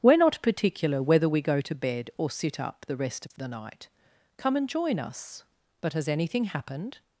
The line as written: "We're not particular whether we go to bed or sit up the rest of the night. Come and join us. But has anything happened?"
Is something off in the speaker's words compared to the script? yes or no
no